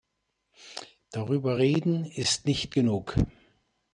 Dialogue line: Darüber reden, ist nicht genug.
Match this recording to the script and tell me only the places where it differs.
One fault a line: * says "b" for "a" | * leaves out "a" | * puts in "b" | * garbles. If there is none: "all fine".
all fine